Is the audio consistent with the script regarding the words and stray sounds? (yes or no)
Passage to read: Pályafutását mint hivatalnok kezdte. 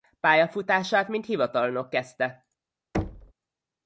no